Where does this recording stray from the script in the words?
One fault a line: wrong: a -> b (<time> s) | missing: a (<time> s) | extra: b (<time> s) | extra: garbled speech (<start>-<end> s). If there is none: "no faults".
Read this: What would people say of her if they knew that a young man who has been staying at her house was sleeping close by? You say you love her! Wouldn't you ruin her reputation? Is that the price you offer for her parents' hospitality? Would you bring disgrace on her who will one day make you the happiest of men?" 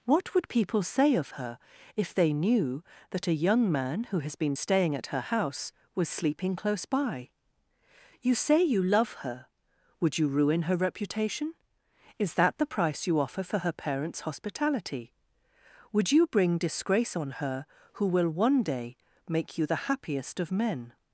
wrong: Wouldn't -> Would (10.0 s)